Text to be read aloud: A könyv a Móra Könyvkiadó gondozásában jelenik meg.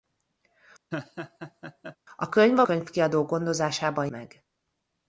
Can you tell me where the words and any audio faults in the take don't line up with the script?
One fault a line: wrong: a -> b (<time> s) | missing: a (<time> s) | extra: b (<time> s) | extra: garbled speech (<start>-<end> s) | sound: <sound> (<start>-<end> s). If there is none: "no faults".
sound: laugh (0.9-2.0 s)
missing: Móra (2.7 s)
missing: jelenik (4.1 s)